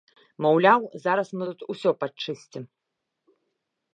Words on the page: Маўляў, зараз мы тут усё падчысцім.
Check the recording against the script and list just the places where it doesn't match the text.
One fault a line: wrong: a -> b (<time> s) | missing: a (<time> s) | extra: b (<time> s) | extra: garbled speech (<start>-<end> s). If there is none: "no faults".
no faults